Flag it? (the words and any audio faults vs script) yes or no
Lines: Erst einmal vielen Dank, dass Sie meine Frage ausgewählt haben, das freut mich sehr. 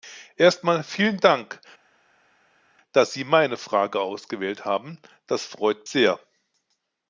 yes